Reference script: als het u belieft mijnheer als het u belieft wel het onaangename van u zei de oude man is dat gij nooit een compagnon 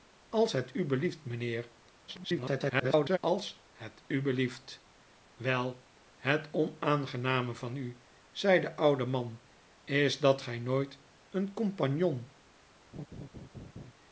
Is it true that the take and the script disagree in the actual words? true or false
true